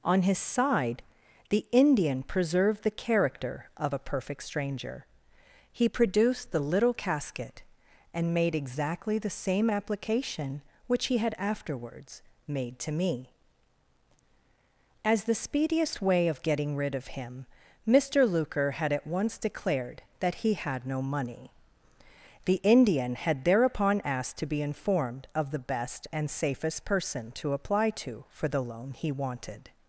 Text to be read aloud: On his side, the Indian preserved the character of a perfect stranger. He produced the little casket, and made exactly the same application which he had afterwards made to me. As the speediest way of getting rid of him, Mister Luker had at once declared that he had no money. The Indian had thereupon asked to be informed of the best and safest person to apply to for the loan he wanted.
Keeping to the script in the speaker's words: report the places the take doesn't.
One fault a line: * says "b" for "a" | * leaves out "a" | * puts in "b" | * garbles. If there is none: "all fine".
all fine